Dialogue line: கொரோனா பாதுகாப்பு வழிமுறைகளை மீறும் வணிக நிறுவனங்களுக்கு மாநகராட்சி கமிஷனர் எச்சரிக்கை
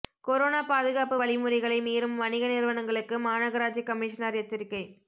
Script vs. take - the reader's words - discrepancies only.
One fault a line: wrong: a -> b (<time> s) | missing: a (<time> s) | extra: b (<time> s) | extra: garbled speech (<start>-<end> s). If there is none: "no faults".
no faults